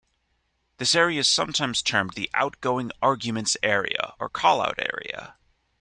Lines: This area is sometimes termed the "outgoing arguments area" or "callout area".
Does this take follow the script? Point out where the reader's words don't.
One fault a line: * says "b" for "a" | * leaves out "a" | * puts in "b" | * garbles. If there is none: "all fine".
all fine